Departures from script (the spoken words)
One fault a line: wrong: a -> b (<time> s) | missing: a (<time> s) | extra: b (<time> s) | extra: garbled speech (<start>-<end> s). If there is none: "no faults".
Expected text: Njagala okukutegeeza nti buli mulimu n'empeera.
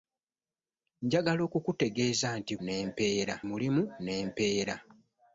wrong: buli -> n'empeera (2.6 s)